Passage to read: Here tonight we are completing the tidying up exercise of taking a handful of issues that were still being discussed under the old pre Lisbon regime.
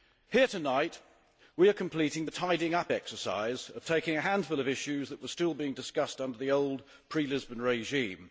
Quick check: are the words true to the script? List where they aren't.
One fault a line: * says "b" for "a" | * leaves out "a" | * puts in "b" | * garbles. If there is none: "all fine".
all fine